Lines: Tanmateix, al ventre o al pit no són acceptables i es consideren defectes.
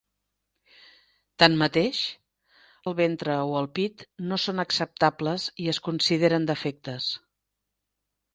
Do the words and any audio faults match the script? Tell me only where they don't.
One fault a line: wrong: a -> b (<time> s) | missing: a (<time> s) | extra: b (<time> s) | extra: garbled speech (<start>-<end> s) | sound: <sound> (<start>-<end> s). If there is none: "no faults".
no faults